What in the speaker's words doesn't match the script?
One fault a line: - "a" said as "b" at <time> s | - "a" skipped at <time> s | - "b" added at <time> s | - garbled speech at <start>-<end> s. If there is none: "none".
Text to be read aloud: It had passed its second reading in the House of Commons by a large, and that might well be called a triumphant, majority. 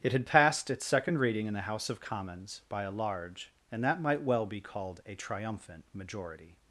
none